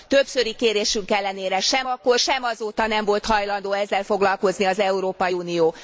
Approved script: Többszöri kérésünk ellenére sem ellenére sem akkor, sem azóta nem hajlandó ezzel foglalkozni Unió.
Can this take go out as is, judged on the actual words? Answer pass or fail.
fail